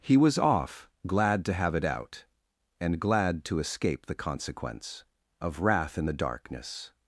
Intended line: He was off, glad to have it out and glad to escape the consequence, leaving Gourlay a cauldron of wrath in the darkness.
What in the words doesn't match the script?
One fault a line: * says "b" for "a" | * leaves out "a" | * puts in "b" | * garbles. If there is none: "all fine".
* leaves out "leaving Gourlay a cauldron"